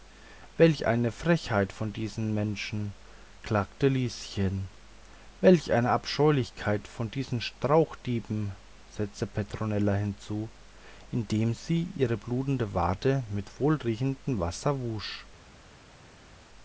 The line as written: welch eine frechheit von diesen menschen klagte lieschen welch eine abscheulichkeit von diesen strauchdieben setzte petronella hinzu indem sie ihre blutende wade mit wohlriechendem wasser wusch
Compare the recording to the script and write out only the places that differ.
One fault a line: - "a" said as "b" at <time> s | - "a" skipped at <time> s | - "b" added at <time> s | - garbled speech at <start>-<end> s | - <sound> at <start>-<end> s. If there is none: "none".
none